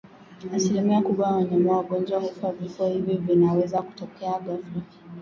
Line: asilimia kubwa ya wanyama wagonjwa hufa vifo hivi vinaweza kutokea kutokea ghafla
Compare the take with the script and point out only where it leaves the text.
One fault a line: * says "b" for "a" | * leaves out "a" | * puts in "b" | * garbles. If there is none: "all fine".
* leaves out "kutokea"